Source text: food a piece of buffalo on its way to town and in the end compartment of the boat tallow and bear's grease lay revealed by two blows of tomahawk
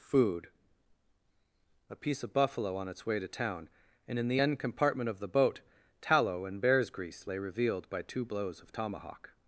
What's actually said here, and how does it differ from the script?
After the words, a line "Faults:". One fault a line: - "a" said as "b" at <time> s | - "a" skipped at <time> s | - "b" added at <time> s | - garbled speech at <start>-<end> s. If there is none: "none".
food a piece of buffalo on its way to town and in the end compartment of the boat tallow and bear's grease lay revealed by two blows of tomahawk
Faults:
none